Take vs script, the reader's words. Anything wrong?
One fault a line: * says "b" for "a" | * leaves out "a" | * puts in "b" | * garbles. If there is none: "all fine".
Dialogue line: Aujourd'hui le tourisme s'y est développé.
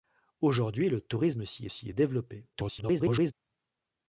* puts in "s'y"
* garbles